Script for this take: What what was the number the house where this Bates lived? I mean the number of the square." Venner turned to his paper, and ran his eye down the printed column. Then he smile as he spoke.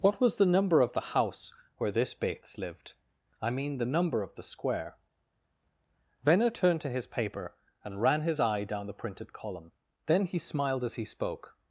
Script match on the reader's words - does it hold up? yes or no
no